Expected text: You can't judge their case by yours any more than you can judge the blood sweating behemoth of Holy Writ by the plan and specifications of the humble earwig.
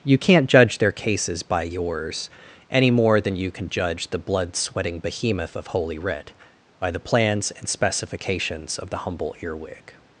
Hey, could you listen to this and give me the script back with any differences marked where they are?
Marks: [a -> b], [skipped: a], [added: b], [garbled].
You can't judge their [case -> cases] by yours any more than you can judge the blood sweating behemoth of Holy Writ by the [plan -> plans] and specifications of the humble earwig.